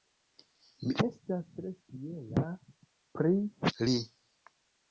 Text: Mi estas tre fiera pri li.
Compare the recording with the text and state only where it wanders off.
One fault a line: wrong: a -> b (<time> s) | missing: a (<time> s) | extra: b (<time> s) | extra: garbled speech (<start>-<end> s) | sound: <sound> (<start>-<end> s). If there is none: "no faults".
no faults